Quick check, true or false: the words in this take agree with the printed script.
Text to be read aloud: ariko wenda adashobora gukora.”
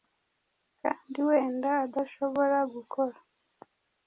false